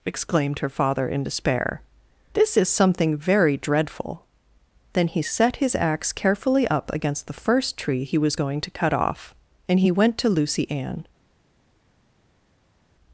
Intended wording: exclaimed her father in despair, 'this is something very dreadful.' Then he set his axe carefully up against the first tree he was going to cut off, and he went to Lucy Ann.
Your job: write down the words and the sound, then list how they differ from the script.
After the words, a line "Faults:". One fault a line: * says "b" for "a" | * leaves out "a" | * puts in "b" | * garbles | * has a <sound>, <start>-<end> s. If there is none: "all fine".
exclaimed her father in despair, 'this is something very dreadful.' Then he set his axe carefully up against the first tree he was going to cut off, and he went to Lucy Ann.
Faults:
all fine